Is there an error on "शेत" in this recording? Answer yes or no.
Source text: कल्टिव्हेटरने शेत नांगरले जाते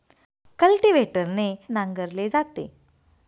yes